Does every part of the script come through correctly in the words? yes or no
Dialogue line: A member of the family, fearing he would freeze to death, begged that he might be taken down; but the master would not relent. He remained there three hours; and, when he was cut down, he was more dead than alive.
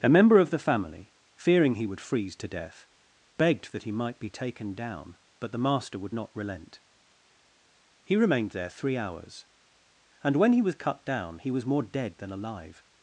yes